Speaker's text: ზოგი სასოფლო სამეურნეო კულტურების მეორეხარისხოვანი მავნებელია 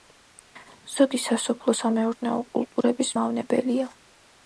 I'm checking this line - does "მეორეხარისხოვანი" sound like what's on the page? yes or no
no